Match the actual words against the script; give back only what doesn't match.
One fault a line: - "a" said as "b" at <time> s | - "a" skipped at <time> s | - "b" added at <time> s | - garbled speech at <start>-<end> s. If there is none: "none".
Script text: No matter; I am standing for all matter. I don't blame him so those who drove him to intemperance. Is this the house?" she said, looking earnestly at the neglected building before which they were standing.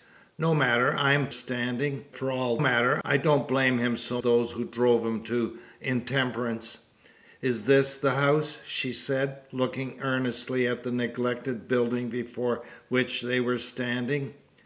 none